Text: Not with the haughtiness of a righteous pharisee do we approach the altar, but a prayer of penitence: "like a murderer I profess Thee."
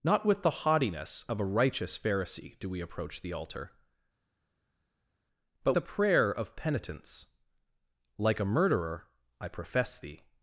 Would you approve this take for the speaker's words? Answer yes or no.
yes